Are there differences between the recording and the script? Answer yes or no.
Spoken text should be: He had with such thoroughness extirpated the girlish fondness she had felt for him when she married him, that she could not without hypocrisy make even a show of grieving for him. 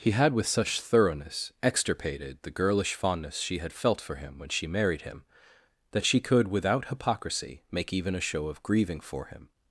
yes